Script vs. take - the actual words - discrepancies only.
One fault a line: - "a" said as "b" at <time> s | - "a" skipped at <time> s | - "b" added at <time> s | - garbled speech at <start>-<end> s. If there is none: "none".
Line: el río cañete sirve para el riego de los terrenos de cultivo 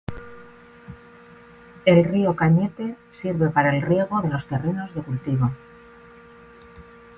none